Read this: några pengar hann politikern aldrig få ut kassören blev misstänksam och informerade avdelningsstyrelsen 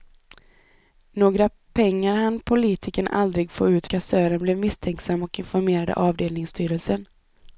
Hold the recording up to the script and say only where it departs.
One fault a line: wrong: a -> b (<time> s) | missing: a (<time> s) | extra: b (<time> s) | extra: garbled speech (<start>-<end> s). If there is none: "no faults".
no faults